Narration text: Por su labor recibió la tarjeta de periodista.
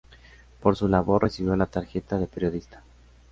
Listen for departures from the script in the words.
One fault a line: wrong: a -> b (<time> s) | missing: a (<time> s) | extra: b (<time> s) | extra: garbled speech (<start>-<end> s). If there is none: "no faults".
no faults